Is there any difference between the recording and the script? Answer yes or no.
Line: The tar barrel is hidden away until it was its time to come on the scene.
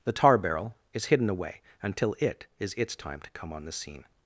yes